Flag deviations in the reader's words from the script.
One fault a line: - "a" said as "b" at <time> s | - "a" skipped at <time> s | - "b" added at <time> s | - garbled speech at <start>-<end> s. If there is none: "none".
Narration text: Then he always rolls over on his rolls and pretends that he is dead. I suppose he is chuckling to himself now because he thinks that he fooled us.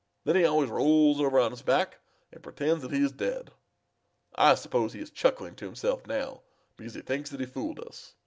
- "rolls" said as "back" at 1.6 s